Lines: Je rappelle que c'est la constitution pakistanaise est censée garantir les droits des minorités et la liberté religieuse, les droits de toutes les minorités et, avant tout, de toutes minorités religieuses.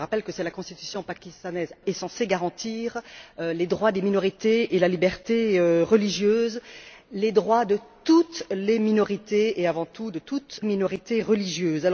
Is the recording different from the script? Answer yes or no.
no